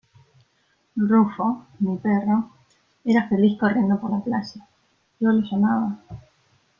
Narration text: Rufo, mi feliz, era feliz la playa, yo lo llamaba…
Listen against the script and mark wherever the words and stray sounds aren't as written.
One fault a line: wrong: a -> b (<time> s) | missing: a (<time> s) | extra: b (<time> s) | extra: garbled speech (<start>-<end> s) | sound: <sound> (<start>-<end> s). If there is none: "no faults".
wrong: feliz -> perro (2.0 s)
extra: corriendo por (3.6 s)